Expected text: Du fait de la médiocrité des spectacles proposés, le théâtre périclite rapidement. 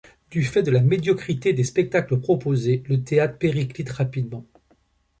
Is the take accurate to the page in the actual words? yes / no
yes